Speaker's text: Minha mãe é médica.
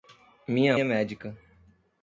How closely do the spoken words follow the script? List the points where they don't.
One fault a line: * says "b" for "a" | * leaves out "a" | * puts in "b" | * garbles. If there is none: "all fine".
* leaves out "mãe"